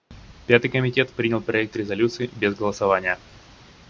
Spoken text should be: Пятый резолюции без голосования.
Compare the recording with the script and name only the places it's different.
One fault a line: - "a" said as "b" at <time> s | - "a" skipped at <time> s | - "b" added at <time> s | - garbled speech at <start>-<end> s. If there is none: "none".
- "комитет принял проект" added at 0.7 s